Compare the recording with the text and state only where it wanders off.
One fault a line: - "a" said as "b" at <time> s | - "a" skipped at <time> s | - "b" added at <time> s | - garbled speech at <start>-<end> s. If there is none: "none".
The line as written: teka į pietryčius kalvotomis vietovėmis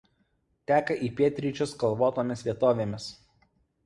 none